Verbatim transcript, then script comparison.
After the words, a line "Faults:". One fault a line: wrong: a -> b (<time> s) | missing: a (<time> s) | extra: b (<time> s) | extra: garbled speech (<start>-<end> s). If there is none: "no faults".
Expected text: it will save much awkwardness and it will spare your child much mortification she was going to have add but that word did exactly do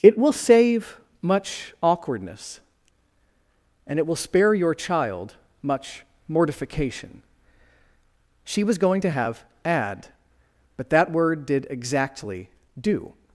it will save much awkwardness and it will spare your child much mortification she was going to have add but that word did exactly do
Faults:
no faults